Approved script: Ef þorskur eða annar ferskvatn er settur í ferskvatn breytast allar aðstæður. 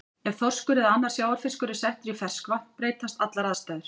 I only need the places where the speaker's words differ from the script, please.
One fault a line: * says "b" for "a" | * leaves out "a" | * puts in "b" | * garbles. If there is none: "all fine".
* says "sjávarfiskur" for "ferskvatn"